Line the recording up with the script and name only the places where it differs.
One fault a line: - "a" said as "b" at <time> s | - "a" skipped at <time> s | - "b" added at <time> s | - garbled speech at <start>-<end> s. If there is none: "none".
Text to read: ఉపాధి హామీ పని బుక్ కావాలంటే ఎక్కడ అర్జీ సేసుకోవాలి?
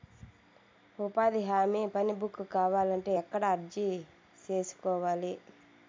none